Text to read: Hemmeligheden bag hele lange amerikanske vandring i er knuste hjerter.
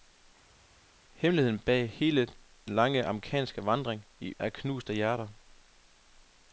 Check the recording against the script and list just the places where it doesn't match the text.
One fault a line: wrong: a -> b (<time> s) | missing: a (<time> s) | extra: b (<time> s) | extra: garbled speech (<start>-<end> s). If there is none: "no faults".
no faults